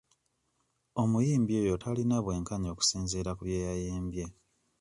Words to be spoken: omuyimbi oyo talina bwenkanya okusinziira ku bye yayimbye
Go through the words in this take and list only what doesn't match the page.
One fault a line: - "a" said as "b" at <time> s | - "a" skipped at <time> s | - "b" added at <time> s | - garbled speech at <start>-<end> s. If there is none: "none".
none